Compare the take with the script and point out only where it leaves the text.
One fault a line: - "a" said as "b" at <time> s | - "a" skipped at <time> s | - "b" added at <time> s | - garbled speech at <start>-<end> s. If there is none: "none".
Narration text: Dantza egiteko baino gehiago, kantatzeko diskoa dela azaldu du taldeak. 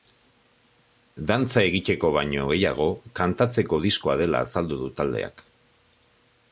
none